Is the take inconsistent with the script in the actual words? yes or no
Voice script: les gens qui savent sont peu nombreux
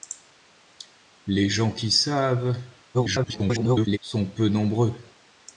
yes